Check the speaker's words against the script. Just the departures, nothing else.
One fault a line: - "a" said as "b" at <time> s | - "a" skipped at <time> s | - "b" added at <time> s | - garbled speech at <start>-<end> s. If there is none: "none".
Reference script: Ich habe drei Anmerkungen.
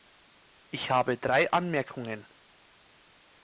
none